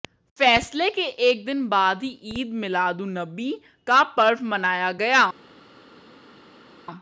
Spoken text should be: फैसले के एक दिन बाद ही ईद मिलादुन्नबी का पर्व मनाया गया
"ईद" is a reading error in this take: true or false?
false